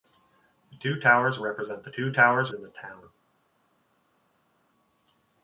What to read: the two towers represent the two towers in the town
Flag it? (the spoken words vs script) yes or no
no